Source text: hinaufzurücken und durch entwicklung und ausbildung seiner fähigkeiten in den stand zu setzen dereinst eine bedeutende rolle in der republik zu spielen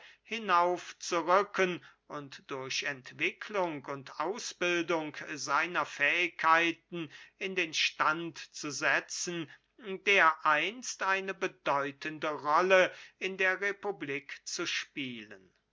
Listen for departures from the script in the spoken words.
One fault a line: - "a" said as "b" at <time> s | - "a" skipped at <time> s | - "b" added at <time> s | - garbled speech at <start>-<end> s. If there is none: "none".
none